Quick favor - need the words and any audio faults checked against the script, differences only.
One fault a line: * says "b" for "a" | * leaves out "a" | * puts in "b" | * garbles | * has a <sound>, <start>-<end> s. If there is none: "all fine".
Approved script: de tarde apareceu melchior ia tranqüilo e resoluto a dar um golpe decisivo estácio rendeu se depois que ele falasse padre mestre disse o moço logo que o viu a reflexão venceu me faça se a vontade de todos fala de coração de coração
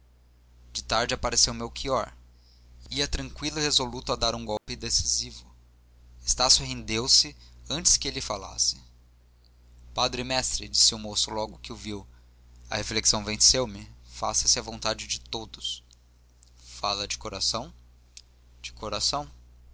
* has a dropout, 4.6-4.7 s
* says "antes" for "depois"